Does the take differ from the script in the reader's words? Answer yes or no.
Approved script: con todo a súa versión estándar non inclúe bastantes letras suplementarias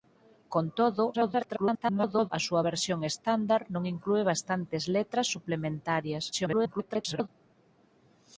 yes